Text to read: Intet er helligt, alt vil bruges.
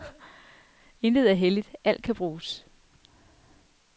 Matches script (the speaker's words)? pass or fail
fail